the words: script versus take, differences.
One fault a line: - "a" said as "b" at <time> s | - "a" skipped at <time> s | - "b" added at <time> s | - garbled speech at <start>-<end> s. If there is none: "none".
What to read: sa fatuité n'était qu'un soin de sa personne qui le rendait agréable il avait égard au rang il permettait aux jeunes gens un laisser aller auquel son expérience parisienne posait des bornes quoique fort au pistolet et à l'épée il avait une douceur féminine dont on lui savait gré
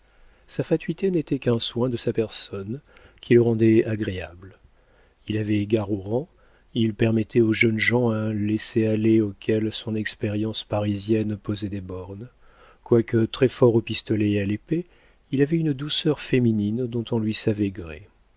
- "très" added at 13.2 s